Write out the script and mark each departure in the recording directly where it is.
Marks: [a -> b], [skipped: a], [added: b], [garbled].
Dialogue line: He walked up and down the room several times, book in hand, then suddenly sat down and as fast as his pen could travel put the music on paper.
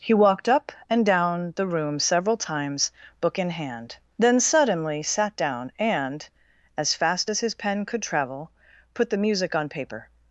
He walked up and down the room several times, book in hand, then suddenly sat down and as fast as his pen could travel put the music on paper.